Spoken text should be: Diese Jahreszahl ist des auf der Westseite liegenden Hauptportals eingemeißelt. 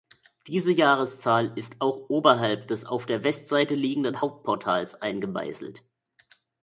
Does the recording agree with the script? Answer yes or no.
no